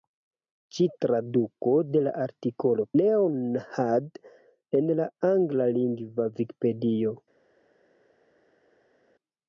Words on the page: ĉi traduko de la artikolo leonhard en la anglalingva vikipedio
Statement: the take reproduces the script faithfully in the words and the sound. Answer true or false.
true